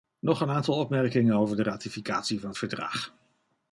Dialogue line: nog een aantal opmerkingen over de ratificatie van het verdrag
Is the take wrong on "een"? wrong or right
right